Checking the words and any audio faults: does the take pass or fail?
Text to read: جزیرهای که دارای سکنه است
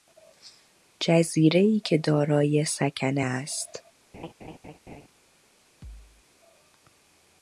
fail